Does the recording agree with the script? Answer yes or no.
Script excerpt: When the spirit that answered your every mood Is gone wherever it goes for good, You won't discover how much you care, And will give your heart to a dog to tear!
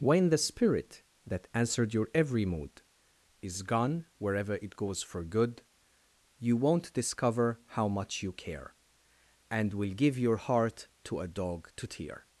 yes